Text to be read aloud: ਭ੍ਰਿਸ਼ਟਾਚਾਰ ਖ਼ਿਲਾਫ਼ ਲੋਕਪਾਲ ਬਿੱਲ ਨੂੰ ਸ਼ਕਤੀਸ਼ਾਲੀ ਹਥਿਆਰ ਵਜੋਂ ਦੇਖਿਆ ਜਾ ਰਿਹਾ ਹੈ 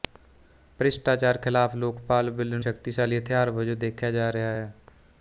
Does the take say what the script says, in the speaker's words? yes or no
no